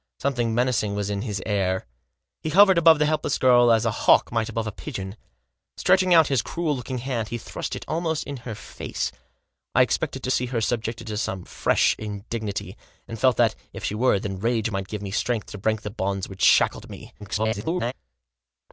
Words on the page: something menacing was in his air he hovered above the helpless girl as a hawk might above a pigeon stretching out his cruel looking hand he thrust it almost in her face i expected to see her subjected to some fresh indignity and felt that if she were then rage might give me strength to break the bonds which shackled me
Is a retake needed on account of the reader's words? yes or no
yes